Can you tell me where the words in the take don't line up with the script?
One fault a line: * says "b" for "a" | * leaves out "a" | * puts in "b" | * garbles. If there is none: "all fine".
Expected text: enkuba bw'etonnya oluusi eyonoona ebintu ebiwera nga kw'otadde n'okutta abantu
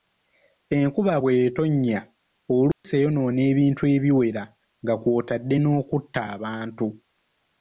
all fine